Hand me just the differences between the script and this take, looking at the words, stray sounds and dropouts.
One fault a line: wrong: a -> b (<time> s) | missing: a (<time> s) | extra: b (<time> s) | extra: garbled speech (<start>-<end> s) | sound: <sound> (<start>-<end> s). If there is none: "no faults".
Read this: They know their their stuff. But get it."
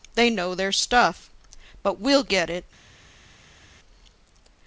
missing: their (0.7 s)
extra: we'll (2.0 s)